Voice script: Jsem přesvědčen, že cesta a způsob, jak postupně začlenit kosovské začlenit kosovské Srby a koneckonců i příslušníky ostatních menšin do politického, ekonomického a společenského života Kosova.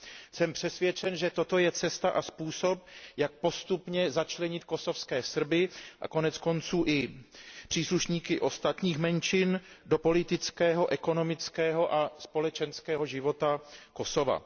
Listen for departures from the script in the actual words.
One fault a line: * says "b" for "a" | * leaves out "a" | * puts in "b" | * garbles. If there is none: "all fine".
* puts in "toto je"
* leaves out "začlenit kosovské"